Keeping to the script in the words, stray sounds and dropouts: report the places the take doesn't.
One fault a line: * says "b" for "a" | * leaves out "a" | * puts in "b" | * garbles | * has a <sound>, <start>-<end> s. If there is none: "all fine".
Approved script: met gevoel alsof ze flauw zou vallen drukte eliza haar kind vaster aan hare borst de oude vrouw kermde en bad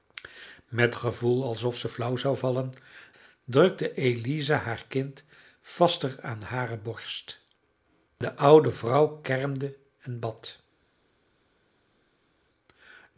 all fine